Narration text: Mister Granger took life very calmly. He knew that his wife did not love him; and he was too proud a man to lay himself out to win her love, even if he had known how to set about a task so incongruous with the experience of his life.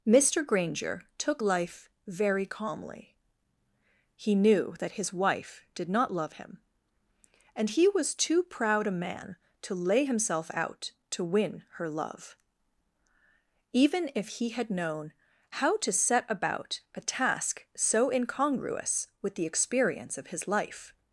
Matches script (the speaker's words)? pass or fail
pass